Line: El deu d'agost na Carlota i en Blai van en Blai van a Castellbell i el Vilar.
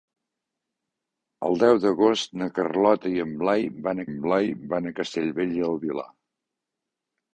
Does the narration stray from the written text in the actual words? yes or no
no